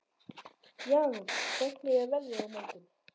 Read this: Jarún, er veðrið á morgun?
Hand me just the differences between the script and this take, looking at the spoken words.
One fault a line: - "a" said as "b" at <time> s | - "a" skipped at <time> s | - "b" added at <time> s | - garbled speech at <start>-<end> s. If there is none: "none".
- "hvernig" added at 1.6 s